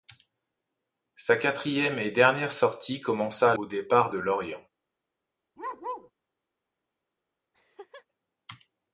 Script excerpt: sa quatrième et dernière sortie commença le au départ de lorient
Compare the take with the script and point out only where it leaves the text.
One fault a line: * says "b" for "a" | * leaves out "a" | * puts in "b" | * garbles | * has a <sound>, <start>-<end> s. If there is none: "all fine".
* leaves out "le"
* has a bark, 5.6-6.1 s
* has a laugh, 7.5-8.1 s